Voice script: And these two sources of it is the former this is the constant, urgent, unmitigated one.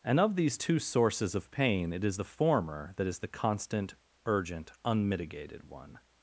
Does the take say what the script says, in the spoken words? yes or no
no